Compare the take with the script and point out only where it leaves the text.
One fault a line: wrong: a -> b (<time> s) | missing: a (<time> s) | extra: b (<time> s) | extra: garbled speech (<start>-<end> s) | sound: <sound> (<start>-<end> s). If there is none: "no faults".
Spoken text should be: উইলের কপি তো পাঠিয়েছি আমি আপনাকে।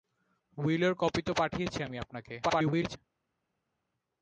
extra: garbled speech (2.4-3.0 s)